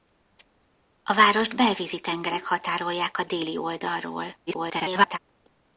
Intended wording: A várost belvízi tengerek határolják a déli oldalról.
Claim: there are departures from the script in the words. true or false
true